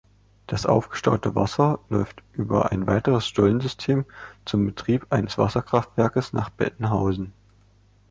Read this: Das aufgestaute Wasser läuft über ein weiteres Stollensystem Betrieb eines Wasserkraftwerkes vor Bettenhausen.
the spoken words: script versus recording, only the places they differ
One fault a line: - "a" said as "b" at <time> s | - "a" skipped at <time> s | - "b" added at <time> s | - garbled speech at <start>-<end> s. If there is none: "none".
- "zum" added at 4.5 s
- "vor" said as "nach" at 6.3 s